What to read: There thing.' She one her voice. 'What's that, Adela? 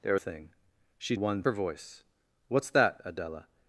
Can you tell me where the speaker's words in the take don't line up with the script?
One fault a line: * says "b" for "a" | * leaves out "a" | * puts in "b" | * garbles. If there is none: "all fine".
all fine